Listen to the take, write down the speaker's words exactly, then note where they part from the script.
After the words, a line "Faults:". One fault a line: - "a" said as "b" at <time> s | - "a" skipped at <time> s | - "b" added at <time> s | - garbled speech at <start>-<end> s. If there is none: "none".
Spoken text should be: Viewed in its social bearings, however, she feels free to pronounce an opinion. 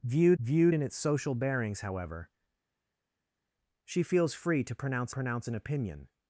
Viewed viewed in its social bearings, however, she feels free to pronounce pronounce an opinion.
Faults:
- "viewed" added at 0.4 s
- "pronounce" added at 5.1 s